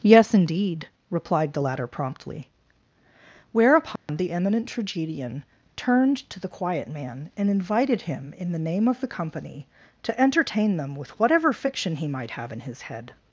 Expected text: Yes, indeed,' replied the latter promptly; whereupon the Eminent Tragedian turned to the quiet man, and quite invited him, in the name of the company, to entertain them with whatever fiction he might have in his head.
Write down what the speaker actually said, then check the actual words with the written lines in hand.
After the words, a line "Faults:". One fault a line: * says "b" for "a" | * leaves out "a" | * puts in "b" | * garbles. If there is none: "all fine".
Yes, indeed,' replied the latter promptly; whereupon the Eminent Tragedian turned to the quiet man, and invited him, in the name of the company, to entertain them with whatever fiction he might have in his head.
Faults:
* leaves out "quite"